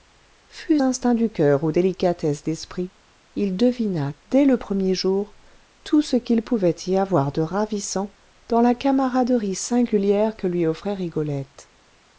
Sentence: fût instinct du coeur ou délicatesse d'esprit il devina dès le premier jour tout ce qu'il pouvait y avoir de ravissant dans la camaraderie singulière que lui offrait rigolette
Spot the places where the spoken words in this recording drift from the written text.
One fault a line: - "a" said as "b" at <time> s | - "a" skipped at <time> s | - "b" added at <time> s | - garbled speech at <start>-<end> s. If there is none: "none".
none